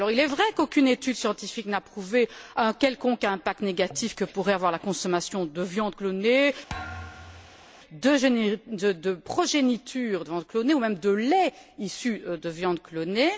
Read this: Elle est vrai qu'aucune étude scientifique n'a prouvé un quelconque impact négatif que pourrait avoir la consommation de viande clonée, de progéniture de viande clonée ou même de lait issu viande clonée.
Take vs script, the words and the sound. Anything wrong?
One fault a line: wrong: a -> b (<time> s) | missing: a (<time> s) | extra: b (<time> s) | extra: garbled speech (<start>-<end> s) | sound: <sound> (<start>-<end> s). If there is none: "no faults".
wrong: Elle -> Il (0.1 s)
sound: thud (6.7-7.7 s)
extra: de (12.2 s)